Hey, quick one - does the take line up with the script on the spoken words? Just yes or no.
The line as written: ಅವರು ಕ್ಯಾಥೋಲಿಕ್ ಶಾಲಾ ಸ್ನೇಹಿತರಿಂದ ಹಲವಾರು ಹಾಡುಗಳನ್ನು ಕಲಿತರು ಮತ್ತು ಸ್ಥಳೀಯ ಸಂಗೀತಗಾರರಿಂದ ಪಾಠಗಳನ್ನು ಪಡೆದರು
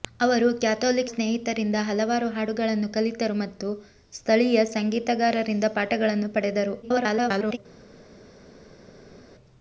no